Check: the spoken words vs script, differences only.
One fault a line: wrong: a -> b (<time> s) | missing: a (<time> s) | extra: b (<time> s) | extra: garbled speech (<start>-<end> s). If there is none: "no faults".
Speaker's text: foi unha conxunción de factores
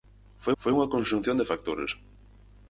extra: foi (0.6 s)